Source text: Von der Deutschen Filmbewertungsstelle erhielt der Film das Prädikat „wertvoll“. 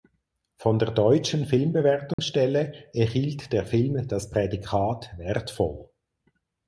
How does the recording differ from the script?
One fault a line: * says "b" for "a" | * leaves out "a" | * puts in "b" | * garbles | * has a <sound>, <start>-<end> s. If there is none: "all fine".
* has a dropout, 2.1-2.2 s